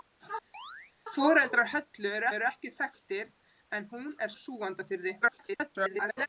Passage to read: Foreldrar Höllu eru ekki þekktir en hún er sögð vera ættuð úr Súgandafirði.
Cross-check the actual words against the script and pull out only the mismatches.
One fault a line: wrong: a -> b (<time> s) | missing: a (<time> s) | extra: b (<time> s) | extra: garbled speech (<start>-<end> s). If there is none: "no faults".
extra: eru (2.4 s)
missing: sögð vera ættuð (4.3 s)
extra: garbled speech (5.2-6.3 s)